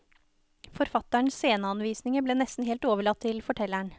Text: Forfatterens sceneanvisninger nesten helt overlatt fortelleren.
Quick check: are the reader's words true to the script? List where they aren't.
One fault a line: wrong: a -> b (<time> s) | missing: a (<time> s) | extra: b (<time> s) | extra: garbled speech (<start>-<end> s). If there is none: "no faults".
extra: ble (2.2 s)
extra: til (3.2 s)